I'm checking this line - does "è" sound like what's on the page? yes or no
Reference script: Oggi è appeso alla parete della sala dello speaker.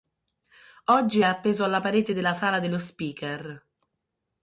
yes